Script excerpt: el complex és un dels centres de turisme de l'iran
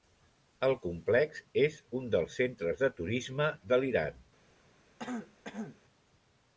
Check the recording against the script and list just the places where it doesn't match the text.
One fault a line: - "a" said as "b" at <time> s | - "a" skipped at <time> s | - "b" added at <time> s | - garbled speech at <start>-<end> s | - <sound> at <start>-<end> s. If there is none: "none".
- throat clearing at 5.0-5.8 s